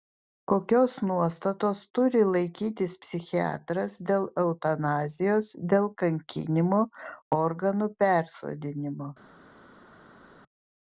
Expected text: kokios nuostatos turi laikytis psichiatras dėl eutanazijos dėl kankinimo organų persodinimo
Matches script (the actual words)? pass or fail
pass